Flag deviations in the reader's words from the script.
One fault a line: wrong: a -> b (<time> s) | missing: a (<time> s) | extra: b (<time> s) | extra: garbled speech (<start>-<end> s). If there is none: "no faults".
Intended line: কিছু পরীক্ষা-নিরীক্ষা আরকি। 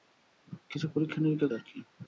no faults